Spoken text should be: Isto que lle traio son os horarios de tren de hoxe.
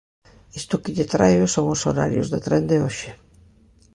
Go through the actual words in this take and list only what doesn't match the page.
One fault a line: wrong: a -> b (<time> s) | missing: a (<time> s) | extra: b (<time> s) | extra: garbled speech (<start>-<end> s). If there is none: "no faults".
no faults